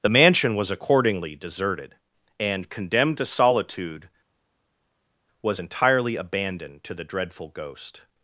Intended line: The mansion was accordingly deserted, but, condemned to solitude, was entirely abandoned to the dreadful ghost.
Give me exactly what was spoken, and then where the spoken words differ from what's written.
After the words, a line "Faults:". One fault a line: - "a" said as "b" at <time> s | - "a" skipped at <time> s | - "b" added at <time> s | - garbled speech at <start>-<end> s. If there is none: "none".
The mansion was accordingly deserted, and, condemned to solitude, was entirely abandoned to the dreadful ghost.
Faults:
- "but" said as "and" at 2.4 s